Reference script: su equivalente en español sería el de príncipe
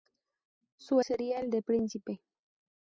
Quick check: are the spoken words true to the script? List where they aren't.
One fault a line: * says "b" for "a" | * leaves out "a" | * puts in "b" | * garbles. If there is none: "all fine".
* leaves out "equivalente en español"